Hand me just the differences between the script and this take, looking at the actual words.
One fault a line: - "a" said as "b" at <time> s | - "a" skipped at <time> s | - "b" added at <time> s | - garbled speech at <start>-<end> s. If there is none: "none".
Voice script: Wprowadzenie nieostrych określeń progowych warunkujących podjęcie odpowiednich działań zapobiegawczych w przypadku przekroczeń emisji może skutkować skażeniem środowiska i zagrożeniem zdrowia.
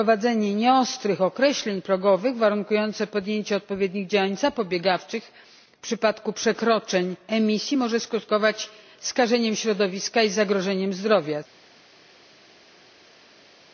none